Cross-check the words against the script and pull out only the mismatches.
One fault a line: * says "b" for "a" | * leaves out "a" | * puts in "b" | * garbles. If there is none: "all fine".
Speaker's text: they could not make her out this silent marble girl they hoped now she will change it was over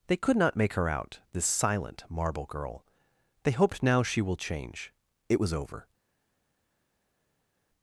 all fine